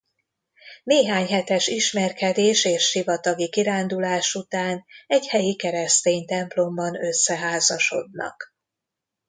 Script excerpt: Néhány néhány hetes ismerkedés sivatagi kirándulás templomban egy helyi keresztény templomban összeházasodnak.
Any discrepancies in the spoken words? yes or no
yes